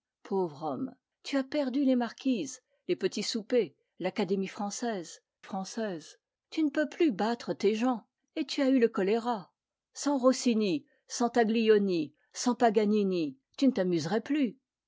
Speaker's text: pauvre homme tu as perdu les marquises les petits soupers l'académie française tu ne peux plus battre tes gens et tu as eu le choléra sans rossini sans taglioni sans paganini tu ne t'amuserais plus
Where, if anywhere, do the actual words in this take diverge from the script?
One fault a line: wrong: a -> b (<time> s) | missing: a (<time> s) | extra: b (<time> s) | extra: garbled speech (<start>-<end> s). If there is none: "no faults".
extra: française (5.4 s)